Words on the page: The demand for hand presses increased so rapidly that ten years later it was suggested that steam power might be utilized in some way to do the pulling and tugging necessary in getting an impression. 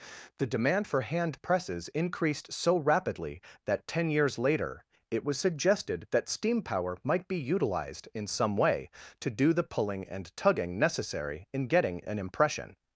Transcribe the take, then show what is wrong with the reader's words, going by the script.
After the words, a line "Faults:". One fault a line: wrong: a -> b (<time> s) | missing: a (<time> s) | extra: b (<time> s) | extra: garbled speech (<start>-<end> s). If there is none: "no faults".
The demand for hand presses increased so rapidly that ten years later it was suggested that steam power might be utilized in some way to do the pulling and tugging necessary in getting an impression.
Faults:
no faults